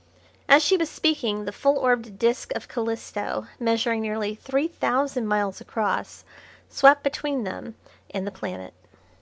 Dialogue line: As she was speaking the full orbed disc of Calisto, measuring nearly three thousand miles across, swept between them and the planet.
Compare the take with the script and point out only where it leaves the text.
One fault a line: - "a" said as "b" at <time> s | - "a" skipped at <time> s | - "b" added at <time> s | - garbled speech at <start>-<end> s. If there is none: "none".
none